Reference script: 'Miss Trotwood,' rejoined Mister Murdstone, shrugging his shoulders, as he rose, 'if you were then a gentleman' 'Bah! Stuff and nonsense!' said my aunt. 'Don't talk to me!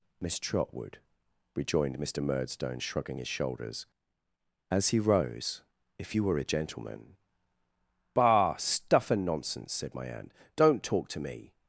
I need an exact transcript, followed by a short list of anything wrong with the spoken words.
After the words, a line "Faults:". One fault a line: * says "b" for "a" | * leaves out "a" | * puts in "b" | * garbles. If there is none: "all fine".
'Miss Trotwood,' rejoined Mister Murdstone, shrugging his shoulders, as he rose, 'if you were a gentleman' 'Bah! Stuff and nonsense!' said my aunt. 'Don't talk to me!
Faults:
* leaves out "then"